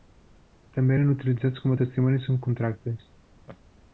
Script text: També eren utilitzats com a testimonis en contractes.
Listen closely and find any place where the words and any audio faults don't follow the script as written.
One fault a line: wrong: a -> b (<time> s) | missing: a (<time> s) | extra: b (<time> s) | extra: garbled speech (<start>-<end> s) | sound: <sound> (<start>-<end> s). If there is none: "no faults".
sound: laugh (3.5-3.6 s)